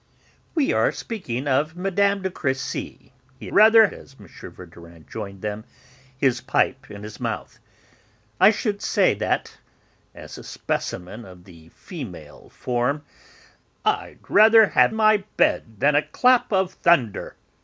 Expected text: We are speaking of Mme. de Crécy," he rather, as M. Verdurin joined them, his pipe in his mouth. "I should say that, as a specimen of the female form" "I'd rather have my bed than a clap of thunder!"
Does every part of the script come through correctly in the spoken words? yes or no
yes